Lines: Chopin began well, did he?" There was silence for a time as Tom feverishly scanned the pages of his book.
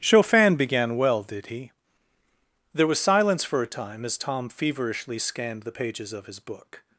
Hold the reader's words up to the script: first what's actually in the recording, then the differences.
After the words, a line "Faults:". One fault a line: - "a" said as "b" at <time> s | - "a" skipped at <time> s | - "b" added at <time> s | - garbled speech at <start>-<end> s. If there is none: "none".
Chopin began well, did he?" There was silence for a time as Tom feverishly scanned the pages of his book.
Faults:
none